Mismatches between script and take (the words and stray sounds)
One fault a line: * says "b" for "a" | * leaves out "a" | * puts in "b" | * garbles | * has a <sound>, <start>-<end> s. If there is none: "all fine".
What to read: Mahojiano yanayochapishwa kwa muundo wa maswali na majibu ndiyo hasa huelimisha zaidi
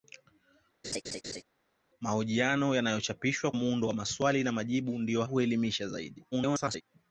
* has a laugh, 0.8-1.4 s
* leaves out "kwa"
* leaves out "hasa"
* garbles